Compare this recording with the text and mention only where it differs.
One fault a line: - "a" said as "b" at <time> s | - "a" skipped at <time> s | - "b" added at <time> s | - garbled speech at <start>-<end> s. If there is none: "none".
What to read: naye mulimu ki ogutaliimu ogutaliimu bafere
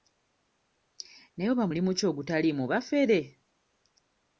- "oba" added at 1.5 s
- "ogutaliimu" skipped at 2.6 s